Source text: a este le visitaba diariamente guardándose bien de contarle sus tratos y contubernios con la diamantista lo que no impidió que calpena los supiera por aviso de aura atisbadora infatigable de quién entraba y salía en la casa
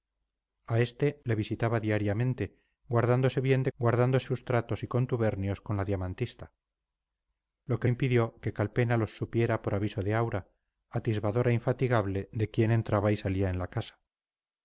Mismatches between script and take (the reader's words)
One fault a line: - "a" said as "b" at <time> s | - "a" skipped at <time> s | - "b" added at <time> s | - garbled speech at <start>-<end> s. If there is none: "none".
- "contarle" said as "guardándose" at 3.8 s
- "no" skipped at 7.9 s